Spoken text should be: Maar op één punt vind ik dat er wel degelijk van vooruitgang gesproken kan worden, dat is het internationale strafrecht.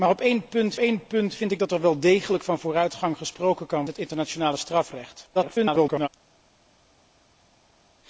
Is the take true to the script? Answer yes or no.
no